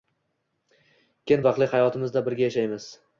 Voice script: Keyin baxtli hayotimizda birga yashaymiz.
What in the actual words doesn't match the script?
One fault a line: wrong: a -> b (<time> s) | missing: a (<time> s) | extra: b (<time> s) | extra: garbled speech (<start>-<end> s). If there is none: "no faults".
no faults